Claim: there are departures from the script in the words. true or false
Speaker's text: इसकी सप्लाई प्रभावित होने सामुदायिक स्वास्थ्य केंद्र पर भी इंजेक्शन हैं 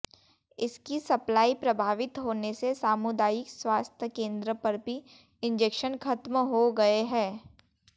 true